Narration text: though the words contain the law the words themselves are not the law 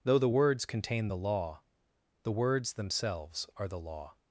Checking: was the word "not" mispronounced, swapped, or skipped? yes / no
yes